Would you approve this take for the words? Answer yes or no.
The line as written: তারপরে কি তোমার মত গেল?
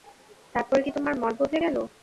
no